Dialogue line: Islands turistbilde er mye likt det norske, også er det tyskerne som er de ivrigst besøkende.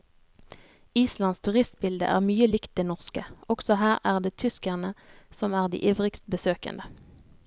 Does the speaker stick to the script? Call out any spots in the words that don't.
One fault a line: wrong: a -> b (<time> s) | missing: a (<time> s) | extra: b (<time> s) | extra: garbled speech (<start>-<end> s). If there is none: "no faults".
extra: her (3.8 s)